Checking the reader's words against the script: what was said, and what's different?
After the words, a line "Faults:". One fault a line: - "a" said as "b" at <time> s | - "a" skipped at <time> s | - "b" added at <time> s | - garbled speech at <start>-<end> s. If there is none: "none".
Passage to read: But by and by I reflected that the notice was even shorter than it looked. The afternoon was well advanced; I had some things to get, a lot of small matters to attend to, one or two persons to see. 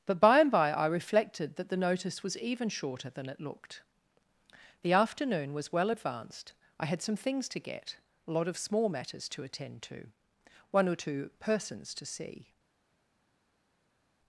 But by and by I reflected that the notice was even shorter than it looked. The afternoon was well advanced; I had some things to get, a lot of small matters to attend to, one or two persons to see.
Faults:
none